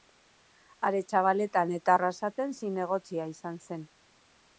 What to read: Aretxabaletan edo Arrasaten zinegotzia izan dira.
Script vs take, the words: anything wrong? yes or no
yes